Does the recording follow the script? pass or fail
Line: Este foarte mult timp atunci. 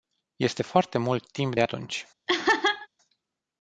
fail